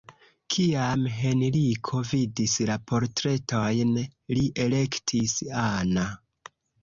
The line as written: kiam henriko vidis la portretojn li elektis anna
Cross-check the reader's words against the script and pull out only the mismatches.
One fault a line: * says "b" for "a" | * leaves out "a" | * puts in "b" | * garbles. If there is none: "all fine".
all fine